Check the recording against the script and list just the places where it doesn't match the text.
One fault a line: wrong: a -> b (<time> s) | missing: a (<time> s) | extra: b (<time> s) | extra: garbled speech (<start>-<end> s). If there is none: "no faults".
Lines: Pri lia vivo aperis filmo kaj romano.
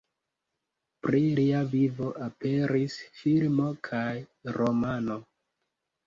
no faults